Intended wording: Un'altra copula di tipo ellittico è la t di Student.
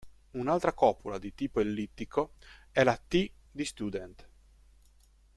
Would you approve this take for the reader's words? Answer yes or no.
yes